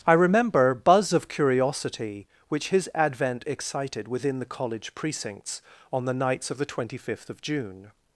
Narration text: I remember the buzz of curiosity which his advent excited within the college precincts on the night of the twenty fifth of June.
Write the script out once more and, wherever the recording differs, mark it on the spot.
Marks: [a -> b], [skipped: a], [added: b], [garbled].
I remember [skipped: the] buzz of curiosity which his advent excited within the college precincts on the [night -> nights] of the twenty fifth of June.